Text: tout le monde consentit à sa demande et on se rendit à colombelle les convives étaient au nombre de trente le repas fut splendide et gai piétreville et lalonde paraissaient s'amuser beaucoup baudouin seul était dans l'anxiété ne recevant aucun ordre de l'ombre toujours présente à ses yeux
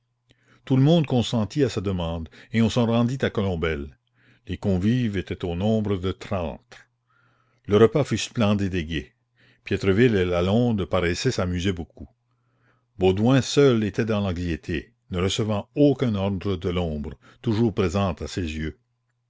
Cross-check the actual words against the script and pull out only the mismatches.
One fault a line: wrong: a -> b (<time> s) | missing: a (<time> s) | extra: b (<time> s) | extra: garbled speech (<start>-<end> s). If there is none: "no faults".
no faults